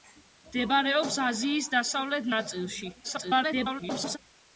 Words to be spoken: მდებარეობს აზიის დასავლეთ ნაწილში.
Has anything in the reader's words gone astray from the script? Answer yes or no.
yes